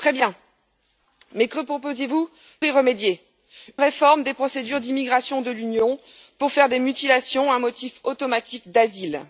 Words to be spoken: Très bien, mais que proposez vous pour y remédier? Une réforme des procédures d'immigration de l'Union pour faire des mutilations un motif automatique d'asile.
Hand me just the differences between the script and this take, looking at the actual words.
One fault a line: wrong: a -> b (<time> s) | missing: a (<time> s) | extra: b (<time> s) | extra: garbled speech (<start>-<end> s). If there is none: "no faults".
missing: pour (2.3 s)
missing: Une (3.2 s)